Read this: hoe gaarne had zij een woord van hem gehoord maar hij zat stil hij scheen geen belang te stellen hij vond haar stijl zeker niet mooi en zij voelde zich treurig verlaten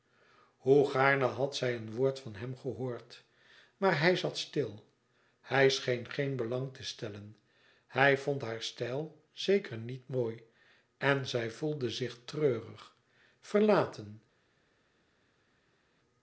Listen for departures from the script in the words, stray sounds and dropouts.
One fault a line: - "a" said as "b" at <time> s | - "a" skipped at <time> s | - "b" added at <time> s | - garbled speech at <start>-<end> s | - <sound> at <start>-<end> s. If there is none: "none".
none